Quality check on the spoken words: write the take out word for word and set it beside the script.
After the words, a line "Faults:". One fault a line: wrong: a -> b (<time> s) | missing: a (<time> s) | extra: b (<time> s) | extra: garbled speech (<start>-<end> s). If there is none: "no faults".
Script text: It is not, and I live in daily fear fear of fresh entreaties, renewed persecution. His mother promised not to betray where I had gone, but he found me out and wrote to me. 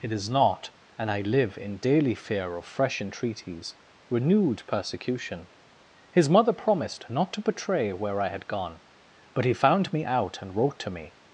It is not, and I live in daily fear of fresh entreaties, renewed persecution. His mother promised not to betray where I had gone, but he found me out and wrote to me.
Faults:
missing: fear (2.6 s)